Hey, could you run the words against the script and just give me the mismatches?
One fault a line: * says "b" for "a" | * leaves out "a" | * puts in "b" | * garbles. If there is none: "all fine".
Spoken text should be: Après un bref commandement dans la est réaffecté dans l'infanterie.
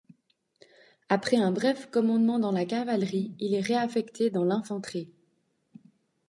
* puts in "cavalerie il"